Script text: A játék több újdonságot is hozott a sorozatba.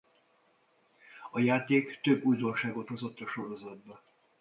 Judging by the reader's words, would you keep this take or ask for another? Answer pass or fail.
fail